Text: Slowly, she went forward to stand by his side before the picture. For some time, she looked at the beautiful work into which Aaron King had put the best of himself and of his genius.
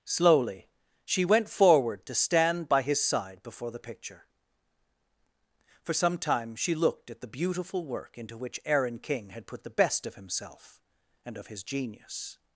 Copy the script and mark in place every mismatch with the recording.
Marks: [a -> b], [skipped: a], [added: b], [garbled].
Slowly, she went forward to stand by his side before the picture. For some time, she looked at the beautiful work into which Aaron King had put the best of himself and of his genius.